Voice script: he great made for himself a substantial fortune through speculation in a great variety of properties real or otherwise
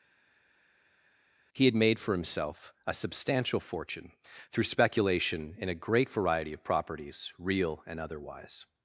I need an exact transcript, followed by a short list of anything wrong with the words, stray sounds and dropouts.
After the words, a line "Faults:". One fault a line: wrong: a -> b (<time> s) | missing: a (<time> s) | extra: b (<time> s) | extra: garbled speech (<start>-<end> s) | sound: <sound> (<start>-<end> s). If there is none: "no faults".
he had made for himself a substantial fortune through speculation in a great variety of properties real and otherwise
Faults:
wrong: great -> had (1.6 s)
wrong: or -> and (7.8 s)